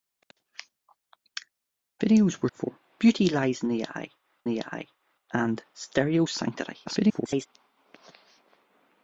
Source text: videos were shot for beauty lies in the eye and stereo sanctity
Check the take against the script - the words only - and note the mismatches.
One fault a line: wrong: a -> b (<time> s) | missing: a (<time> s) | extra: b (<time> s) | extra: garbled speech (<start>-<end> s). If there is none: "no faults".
missing: shot (2.5 s)
extra: the eye (4.5 s)
extra: garbled speech (6.9-7.5 s)